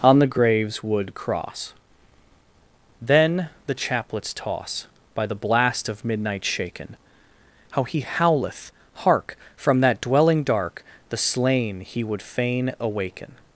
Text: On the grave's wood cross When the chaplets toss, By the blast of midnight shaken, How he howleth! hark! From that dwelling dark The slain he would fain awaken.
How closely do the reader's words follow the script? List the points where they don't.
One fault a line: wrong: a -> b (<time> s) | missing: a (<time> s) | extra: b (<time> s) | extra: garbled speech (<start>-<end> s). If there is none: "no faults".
wrong: When -> Then (3.0 s)